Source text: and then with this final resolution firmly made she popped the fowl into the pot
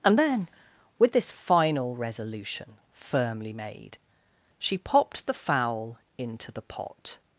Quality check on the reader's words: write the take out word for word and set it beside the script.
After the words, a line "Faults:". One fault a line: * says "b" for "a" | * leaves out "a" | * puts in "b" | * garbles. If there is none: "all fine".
and then with this final resolution firmly made she popped the fowl into the pot
Faults:
all fine